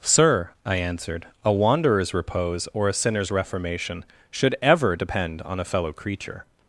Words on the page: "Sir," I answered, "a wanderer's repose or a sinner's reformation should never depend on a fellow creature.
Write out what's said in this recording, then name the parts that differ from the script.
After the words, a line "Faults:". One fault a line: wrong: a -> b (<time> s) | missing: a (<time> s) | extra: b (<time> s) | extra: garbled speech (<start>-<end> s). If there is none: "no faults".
"Sir," I answered, "a wanderer's repose or a sinner's reformation should ever depend on a fellow creature.
Faults:
wrong: never -> ever (4.6 s)